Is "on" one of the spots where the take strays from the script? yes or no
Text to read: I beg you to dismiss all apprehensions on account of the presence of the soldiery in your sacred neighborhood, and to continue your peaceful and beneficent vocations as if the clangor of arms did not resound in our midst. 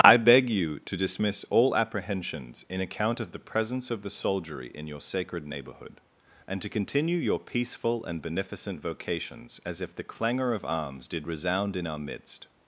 yes